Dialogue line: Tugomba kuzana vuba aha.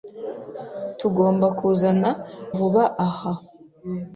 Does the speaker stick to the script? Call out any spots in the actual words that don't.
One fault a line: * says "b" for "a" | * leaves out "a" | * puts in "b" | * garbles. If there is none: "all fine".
all fine